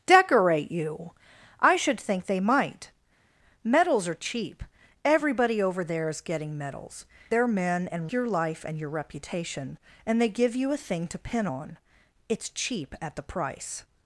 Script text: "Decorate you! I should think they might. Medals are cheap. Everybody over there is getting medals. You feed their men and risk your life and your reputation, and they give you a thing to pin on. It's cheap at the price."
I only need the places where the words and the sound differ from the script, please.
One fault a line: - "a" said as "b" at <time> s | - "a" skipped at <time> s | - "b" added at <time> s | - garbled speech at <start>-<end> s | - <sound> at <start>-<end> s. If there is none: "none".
- "You feed" skipped at 7.1 s
- "risk" skipped at 8.1 s